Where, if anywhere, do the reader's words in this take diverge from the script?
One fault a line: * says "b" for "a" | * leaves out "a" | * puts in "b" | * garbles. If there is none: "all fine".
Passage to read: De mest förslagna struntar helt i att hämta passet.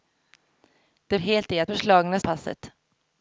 * leaves out "mest förslagna struntar"
* says "förslagna" for "hämta"